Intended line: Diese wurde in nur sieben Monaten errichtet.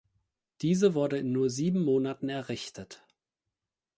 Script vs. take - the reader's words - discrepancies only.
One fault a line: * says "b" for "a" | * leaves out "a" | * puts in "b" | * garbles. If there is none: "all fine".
all fine